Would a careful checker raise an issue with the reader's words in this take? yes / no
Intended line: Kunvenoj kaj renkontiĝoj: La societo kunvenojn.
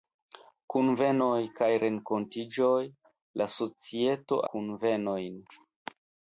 no